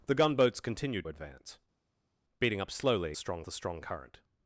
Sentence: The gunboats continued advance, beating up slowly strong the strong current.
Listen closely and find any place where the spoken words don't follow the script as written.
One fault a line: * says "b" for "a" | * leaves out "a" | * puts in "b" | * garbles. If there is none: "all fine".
all fine